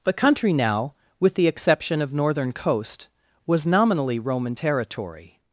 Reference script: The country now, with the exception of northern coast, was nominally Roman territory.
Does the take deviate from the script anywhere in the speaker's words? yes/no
no